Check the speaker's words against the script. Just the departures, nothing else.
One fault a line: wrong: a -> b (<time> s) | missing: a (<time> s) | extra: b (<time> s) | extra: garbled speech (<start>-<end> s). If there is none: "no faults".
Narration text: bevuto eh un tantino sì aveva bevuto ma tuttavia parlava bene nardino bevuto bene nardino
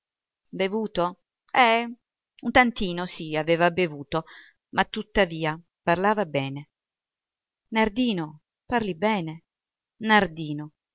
wrong: bevuto -> parli (8.7 s)